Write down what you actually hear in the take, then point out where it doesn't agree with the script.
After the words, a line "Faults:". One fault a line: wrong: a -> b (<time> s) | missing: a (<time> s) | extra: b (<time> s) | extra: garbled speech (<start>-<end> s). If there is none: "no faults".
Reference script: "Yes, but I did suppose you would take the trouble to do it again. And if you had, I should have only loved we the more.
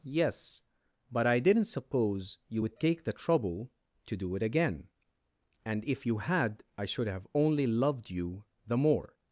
"Yes, but I didn't suppose you would take the trouble to do it again. And if you had, I should have only loved you the more.
Faults:
wrong: did -> didn't (1.4 s)
wrong: we -> you (8.1 s)